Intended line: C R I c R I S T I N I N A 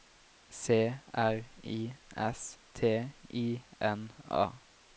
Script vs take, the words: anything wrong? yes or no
yes